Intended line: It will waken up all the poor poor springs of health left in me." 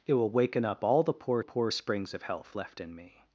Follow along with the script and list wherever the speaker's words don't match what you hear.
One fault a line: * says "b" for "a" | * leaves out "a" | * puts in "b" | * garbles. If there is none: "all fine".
all fine